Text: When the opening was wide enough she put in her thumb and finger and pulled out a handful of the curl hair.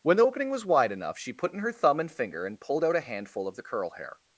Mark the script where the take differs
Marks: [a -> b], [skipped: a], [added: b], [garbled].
When the opening was wide enough she put in her thumb and finger and pulled out a handful of the curl hair.